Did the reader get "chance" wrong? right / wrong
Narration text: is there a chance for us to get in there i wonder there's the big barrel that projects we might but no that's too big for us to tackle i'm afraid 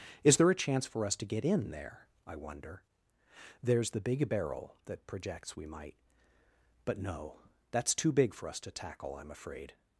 right